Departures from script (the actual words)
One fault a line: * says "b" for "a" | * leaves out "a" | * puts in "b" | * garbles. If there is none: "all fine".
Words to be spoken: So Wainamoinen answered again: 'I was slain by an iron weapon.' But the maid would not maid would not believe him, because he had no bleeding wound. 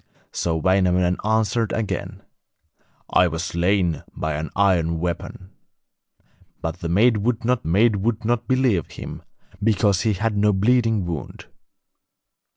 all fine